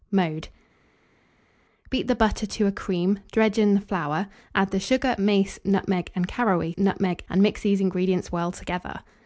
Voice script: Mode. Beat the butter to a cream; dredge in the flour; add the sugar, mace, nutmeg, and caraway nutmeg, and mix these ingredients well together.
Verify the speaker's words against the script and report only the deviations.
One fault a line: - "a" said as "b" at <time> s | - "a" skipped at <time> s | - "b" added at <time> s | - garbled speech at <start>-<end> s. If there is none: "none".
none